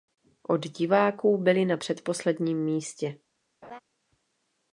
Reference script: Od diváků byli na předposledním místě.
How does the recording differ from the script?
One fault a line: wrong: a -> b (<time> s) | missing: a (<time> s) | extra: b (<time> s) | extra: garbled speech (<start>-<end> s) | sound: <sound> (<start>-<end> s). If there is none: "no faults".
sound: laugh (3.6-3.8 s)